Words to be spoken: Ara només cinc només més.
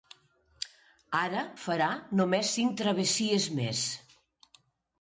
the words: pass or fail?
fail